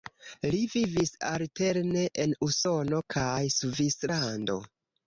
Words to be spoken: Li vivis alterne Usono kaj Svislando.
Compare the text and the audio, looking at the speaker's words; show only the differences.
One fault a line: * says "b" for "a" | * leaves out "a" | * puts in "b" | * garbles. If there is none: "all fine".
* puts in "en"